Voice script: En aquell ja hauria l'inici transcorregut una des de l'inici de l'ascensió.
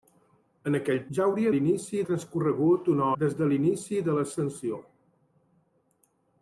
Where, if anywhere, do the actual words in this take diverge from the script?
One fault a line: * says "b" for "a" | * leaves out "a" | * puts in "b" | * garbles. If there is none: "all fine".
all fine